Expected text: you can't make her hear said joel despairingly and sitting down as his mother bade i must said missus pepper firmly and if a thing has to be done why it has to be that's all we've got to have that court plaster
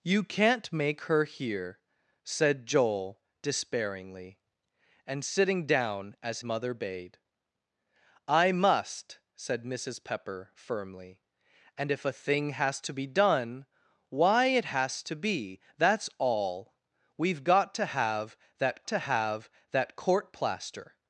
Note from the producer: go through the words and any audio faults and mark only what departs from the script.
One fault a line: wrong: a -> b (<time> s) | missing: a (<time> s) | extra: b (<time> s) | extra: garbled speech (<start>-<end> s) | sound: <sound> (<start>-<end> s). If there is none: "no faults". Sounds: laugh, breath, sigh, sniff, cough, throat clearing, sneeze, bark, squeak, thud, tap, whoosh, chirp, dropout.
missing: his (6.4 s)
extra: to have that (18.9 s)